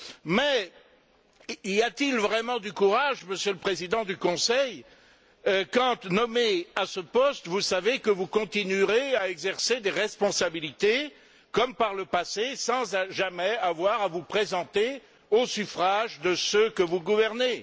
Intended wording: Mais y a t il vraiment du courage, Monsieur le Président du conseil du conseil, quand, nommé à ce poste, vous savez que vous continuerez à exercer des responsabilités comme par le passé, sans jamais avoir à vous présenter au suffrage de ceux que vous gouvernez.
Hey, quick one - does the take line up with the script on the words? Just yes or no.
no